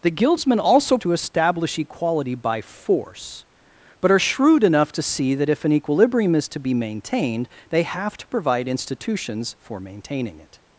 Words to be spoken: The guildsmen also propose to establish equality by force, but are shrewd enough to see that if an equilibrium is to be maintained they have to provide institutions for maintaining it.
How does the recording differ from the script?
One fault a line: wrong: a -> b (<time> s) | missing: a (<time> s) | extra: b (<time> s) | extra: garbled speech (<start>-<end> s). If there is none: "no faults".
missing: propose (1.0 s)